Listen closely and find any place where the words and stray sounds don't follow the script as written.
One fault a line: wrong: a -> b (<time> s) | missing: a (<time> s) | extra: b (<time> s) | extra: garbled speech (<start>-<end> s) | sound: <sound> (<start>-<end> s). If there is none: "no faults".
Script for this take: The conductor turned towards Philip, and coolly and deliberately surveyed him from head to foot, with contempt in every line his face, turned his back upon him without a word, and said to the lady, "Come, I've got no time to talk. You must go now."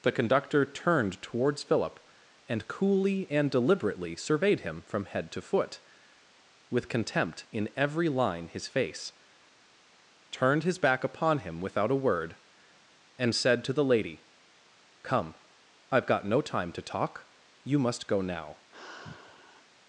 sound: sigh (18.7-19.7 s)